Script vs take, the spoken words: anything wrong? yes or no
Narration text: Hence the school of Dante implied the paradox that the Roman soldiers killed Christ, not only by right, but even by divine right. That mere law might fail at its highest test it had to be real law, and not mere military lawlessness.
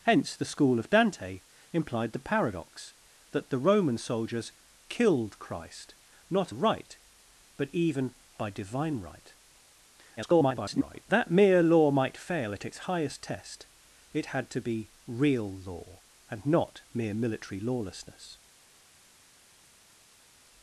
yes